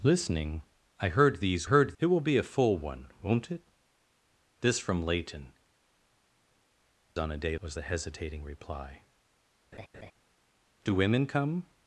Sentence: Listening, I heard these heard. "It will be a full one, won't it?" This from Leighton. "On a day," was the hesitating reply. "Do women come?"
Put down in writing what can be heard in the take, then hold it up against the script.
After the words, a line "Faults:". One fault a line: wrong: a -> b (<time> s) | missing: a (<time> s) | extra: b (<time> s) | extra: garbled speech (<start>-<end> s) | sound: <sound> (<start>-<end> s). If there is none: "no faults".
Listening, I heard these heard. "It will be a full one, won't it?" This from Leighton. "On a day," was the hesitating reply. "Do women come?"
Faults:
sound: laugh (9.7-10.1 s)